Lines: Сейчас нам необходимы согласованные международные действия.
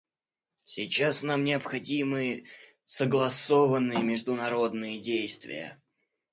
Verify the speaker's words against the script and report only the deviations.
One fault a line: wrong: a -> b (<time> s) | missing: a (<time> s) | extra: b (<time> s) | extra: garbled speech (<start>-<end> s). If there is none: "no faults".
no faults